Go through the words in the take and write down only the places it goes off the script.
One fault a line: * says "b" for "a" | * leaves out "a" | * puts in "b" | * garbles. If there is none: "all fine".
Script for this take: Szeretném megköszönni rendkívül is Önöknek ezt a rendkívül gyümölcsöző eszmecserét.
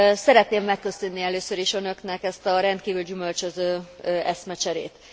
* says "először" for "rendkívül"